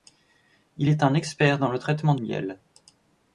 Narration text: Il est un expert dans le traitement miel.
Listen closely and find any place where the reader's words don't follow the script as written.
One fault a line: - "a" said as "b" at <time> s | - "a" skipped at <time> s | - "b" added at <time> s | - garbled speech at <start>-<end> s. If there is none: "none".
none